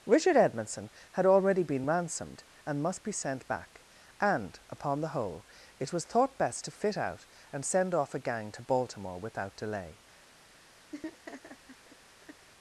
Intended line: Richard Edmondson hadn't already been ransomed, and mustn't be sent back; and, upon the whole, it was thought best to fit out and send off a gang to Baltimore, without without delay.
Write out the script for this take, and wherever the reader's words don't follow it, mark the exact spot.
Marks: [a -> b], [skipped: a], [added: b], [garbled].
Richard Edmondson [hadn't -> had] already been ransomed, and [mustn't -> must] be sent back; and, upon the whole, it was thought best to fit out and send off a gang to Baltimore, without [skipped: without] delay.